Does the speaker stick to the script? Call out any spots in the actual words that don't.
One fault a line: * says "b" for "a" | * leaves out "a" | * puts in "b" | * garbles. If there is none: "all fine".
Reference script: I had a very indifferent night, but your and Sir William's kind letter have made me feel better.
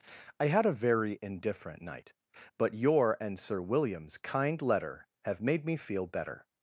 all fine